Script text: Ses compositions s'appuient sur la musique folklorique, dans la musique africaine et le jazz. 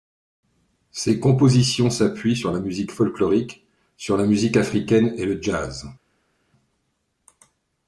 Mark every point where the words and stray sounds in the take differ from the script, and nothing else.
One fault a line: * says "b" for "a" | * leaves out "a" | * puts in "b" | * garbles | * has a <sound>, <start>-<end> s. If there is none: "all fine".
* says "sur" for "dans"